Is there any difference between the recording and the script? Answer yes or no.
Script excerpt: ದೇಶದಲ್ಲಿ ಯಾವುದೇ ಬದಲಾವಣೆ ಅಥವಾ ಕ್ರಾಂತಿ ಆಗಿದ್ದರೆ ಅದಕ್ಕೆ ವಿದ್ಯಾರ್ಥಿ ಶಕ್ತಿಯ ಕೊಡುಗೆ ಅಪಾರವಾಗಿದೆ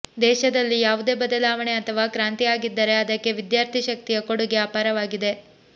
no